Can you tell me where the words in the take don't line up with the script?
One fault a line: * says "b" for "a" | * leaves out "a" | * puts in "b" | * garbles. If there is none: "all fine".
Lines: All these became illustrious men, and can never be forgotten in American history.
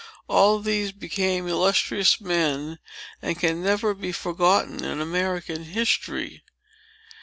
all fine